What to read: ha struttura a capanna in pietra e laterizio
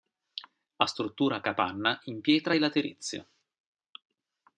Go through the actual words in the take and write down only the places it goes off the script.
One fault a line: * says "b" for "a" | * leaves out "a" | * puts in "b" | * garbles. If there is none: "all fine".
all fine